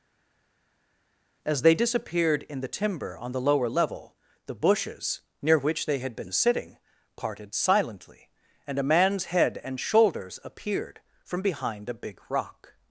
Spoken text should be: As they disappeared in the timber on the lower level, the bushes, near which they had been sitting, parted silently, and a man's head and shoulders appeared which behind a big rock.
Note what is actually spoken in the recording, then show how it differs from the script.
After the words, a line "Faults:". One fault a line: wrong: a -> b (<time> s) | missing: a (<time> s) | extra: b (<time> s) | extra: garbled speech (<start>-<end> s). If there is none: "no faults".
As they disappeared in the timber on the lower level, the bushes, near which they had been sitting, parted silently, and a man's head and shoulders appeared from behind a big rock.
Faults:
wrong: which -> from (11.2 s)